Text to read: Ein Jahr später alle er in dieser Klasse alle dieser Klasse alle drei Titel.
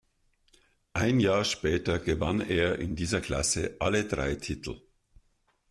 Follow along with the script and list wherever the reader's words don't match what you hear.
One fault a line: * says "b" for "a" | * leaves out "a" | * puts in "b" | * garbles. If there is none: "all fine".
* says "gewann" for "alle"
* leaves out "dieser Klasse alle"